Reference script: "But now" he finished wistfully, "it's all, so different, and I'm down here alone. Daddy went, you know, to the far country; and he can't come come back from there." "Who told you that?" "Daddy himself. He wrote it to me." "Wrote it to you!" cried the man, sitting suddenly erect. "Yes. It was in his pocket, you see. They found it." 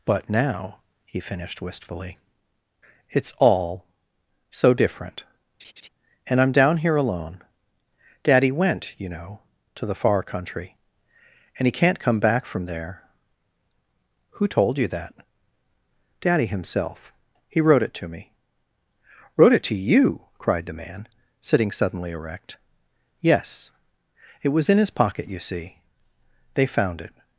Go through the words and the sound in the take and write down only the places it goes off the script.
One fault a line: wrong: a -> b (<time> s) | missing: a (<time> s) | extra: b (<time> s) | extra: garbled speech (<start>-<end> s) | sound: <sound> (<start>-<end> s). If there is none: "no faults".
sound: laugh (5.6-5.9 s)
missing: come (12.2 s)